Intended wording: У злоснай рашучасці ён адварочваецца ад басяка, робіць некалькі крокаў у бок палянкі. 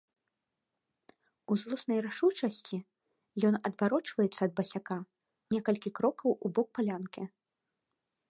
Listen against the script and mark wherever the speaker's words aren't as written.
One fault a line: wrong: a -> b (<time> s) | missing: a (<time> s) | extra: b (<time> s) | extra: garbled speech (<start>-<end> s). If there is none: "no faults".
missing: робіць (5.0 s)